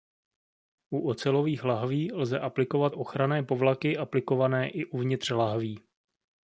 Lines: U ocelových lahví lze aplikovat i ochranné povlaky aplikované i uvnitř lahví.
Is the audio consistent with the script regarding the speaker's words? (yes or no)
no